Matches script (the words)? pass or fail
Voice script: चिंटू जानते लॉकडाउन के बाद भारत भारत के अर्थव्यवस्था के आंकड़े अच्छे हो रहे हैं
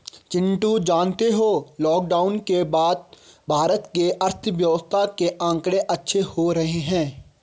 fail